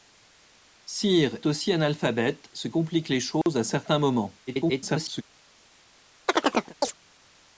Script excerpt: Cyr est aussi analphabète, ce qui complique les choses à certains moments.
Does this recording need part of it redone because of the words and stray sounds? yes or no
yes